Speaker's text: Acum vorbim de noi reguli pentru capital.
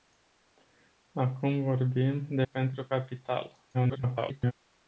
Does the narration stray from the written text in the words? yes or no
yes